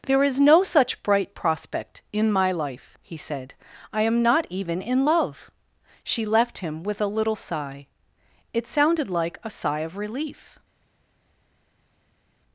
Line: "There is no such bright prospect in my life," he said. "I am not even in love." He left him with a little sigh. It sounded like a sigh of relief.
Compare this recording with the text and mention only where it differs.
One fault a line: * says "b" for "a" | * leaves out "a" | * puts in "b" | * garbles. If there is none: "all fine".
* says "She" for "He"